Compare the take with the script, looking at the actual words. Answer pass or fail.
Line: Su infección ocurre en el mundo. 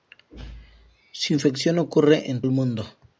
pass